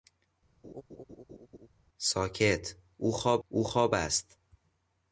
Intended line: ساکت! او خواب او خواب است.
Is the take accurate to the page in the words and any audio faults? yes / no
no